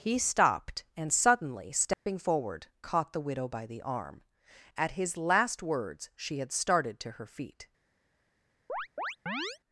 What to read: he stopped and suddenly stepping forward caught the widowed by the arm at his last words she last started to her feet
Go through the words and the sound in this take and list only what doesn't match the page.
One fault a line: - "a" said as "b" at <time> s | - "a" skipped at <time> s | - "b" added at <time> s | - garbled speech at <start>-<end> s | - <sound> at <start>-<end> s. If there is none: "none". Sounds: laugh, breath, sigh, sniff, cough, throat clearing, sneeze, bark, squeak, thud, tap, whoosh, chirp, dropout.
- dropout at 1.9-2.1 s
- "widowed" said as "widow" at 3.2 s
- "last" said as "had" at 6.4 s
- chirp at 8.7-9.6 s